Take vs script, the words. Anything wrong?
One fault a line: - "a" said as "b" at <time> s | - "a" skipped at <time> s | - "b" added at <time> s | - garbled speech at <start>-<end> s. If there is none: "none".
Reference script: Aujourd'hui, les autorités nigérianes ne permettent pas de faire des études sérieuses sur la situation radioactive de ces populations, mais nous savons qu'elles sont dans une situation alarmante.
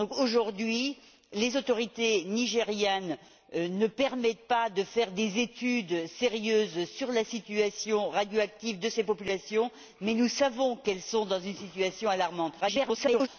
- garbled speech at 12.6-13.3 s